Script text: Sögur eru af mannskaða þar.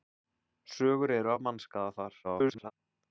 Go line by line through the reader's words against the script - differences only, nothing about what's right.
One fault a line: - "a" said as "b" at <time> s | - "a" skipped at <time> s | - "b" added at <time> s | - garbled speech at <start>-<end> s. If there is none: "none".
- garbled speech at 2.2-2.7 s